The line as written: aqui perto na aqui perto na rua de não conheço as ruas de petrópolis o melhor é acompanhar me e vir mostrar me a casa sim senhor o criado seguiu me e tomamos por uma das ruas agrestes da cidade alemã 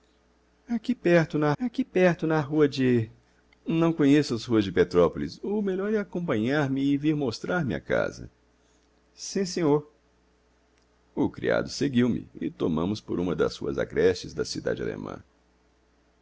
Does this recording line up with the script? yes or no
yes